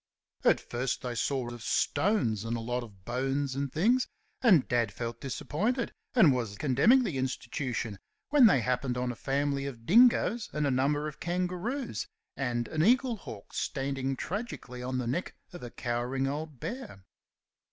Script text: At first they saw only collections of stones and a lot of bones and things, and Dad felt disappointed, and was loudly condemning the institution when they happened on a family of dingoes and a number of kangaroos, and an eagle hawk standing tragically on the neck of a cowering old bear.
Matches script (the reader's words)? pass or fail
fail